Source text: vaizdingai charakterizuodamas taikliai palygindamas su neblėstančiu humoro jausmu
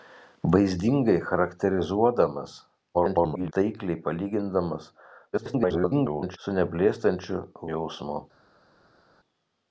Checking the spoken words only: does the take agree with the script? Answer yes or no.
no